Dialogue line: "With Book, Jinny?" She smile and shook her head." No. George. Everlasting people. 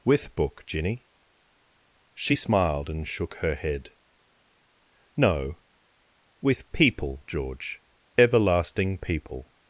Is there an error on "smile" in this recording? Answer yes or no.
yes